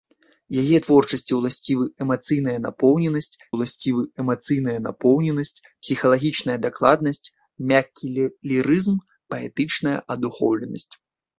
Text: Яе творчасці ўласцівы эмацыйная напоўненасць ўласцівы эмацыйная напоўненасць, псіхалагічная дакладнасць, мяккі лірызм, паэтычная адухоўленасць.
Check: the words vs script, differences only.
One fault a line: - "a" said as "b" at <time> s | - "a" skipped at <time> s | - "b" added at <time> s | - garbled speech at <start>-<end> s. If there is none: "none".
none